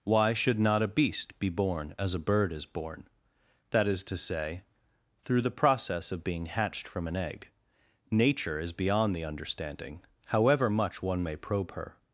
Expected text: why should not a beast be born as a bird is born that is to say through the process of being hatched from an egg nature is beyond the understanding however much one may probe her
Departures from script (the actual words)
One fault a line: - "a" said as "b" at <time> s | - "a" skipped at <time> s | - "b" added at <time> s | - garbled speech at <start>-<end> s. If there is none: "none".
none